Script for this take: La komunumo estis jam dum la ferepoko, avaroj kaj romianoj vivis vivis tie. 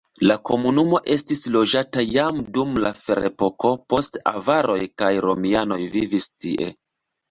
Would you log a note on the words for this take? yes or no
yes